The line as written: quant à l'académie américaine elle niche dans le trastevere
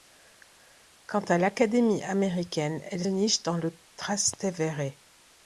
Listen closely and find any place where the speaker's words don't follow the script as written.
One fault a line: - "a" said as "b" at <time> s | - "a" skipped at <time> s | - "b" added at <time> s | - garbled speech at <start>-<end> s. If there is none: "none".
none